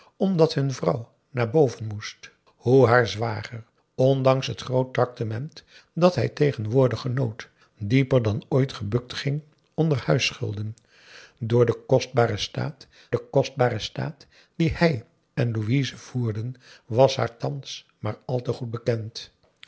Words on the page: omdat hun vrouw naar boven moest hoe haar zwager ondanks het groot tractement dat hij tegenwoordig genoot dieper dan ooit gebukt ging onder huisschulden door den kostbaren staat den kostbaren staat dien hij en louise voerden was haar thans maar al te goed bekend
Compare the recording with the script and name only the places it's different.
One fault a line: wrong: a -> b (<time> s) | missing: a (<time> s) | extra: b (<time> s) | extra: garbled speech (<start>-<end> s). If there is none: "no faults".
no faults